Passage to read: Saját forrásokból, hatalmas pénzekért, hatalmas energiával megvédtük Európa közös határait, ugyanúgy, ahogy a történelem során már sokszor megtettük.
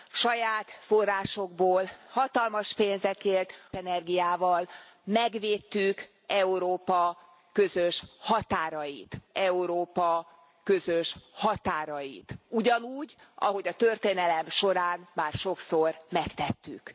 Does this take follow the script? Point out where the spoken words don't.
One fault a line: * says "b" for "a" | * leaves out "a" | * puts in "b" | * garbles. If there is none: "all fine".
* leaves out "hatalmas"
* puts in "Európa közös határait"